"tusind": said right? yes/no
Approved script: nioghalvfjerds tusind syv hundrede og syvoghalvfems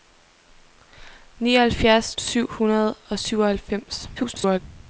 no